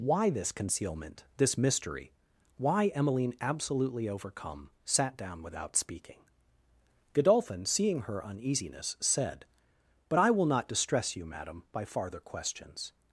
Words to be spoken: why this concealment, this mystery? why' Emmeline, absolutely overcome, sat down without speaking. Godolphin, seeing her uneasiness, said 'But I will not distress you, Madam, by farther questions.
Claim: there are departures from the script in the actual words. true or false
false